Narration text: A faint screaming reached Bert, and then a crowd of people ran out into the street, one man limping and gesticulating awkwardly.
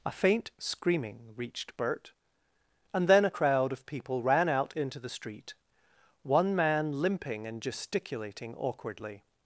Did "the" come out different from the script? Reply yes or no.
no